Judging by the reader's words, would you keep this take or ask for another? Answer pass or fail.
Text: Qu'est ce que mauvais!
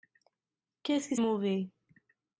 pass